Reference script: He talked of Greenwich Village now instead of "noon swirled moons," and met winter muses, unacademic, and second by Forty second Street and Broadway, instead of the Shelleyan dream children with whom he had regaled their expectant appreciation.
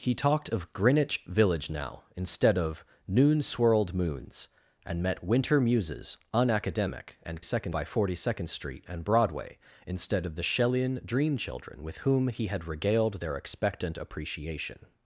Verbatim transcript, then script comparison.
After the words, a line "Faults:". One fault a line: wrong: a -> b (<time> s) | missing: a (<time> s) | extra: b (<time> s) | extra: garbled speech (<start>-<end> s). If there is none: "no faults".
He talked of Greenwich Village now instead of "noon swirled moons," and met winter muses, unacademic, and second by Forty second Street and Broadway, instead of the Shelleyan dream children with whom he had regaled their expectant appreciation.
Faults:
no faults